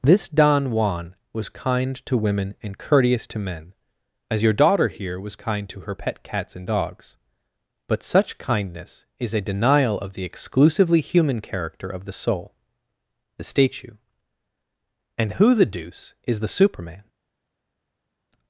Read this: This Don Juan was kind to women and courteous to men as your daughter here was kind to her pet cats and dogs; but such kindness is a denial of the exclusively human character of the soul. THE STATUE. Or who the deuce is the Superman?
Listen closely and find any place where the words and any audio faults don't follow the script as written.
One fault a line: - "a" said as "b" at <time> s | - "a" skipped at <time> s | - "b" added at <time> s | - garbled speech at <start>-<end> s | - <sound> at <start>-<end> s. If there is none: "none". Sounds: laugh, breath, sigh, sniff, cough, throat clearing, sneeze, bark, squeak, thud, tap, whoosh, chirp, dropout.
- "Or" said as "And" at 15.2 s